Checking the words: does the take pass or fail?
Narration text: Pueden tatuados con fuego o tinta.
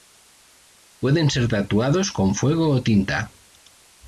fail